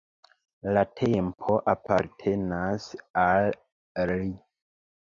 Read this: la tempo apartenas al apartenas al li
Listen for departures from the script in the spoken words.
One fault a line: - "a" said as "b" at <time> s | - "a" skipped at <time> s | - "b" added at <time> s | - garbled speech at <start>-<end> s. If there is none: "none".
- "apartenas al" skipped at 3.5 s